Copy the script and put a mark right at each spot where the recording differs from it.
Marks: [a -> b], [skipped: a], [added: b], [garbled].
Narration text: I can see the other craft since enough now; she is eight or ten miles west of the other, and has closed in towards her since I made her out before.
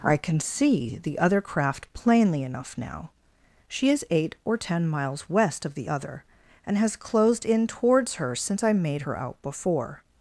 I can see the other craft [since -> plainly] enough now; she is eight or ten miles west of the other, and has closed in towards her since I made her out before.